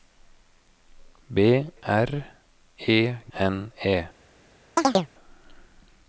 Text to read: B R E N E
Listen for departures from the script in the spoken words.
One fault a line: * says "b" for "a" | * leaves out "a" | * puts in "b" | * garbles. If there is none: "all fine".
all fine